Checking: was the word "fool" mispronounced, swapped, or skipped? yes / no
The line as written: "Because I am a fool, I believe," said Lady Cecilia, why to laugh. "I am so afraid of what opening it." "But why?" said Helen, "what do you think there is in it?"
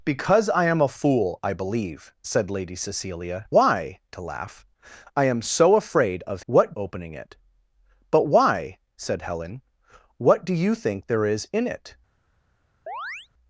no